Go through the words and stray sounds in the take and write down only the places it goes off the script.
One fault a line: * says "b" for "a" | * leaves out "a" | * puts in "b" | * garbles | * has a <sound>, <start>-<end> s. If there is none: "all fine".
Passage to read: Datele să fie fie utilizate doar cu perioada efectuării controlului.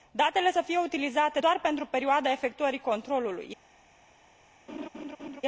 * leaves out "fie"
* says "pentru" for "cu"
* has a laugh, 4.7-5.4 s